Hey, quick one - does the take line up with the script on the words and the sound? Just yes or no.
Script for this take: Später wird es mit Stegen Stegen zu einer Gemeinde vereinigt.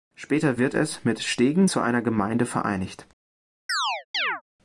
no